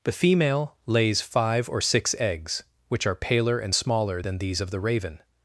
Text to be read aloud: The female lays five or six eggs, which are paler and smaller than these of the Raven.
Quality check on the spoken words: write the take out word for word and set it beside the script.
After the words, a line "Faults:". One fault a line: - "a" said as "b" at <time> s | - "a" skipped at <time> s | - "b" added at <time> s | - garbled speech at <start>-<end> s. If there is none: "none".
The female lays five or six eggs, which are paler and smaller than these of the Raven.
Faults:
none